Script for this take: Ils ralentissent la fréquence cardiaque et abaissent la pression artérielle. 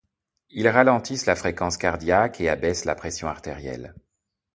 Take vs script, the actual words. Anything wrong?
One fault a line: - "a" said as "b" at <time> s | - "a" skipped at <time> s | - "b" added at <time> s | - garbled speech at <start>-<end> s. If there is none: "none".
none